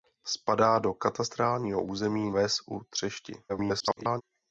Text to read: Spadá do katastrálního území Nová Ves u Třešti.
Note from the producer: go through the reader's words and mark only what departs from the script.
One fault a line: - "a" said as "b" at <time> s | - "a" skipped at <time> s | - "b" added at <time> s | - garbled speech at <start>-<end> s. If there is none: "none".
- "Nová" skipped at 2.3 s
- garbled speech at 3.5-4.2 s